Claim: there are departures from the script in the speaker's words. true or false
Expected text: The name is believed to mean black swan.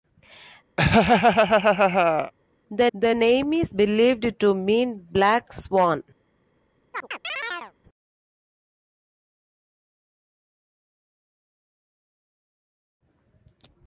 true